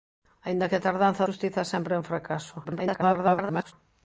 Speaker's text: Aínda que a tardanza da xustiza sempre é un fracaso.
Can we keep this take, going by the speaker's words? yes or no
no